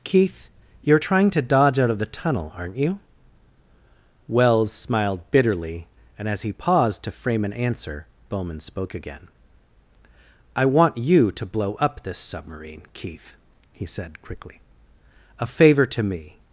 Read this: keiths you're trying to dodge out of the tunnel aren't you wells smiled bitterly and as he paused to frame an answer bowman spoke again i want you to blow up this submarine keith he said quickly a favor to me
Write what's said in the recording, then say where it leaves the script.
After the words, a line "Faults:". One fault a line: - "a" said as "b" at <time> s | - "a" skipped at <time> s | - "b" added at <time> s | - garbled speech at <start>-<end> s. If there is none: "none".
keith you're trying to dodge out of the tunnel aren't you wells smiled bitterly and as he paused to frame an answer bowman spoke again i want you to blow up this submarine keith he said quickly a favor to me
Faults:
- "keiths" said as "keith" at 0.0 s